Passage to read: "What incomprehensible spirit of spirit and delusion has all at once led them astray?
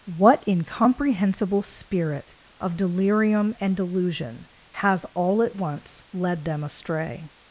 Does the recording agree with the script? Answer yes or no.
no